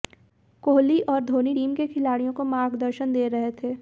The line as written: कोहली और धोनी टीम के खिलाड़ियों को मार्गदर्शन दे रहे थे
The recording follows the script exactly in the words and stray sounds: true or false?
true